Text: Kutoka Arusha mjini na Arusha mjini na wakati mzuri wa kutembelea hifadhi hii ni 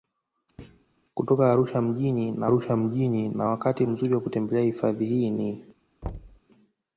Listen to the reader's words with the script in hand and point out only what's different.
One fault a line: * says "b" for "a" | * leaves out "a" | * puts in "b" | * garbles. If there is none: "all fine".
all fine